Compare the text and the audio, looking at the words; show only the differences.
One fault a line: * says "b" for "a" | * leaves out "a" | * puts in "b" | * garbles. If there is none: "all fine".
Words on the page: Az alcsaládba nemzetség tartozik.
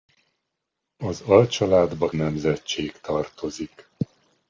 all fine